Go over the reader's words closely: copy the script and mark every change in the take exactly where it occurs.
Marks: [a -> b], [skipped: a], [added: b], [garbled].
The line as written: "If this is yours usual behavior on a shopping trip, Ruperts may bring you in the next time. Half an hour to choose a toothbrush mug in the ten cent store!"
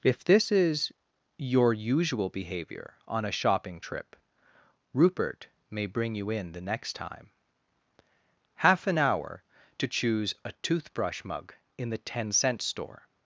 "If this is [yours -> your] usual behavior on a shopping trip, [Ruperts -> Rupert] may bring you in the next time. Half an hour to choose a toothbrush mug in the ten cent store!"